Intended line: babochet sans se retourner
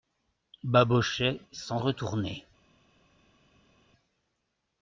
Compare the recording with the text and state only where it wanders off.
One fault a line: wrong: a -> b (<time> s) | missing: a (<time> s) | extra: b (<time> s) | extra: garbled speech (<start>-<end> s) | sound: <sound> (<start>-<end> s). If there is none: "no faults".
missing: se (1.8 s)